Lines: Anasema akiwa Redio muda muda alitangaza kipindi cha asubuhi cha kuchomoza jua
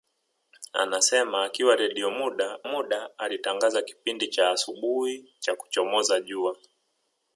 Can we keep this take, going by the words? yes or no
yes